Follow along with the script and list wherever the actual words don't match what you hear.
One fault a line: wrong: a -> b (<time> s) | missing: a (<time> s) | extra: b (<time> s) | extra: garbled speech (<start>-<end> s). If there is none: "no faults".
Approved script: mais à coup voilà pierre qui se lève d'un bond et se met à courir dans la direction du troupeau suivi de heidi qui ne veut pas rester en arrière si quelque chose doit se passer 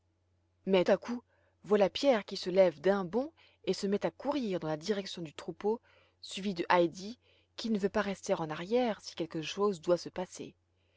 no faults